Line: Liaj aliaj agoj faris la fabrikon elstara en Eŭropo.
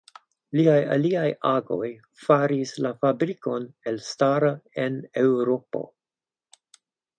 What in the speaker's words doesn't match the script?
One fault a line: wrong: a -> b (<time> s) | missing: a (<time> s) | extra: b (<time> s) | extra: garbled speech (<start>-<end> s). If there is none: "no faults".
no faults